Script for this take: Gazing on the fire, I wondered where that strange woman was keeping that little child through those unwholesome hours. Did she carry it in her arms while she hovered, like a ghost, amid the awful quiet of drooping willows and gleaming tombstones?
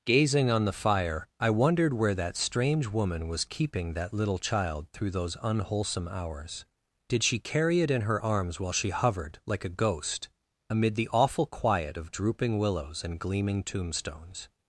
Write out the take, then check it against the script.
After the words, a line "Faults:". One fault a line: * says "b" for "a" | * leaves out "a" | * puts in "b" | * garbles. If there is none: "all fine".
Gazing on the fire, I wondered where that strange woman was keeping that little child through those unwholesome hours. Did she carry it in her arms while she hovered, like a ghost, amid the awful quiet of drooping willows and gleaming tombstones?
Faults:
all fine